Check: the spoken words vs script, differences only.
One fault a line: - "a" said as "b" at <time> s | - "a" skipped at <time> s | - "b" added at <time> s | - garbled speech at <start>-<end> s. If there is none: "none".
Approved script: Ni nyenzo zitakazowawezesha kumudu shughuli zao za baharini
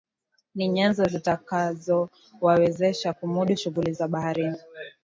- "zao" skipped at 3.9 s